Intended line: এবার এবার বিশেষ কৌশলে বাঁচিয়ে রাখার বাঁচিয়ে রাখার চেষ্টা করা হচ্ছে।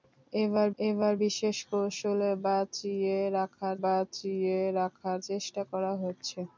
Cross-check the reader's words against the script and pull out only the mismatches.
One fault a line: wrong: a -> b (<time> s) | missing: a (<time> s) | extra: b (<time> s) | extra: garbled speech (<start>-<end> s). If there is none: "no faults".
no faults